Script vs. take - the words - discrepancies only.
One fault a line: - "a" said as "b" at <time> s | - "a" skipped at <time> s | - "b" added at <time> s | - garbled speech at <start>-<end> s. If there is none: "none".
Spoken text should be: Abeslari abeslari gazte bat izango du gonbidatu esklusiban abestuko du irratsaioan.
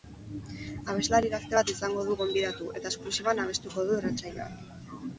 - "abeslari" skipped at 1.3 s
- "eta" added at 2.8 s